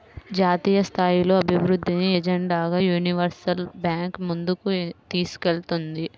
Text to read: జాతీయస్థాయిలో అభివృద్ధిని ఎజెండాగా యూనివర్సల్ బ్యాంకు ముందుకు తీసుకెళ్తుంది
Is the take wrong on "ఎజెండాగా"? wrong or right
right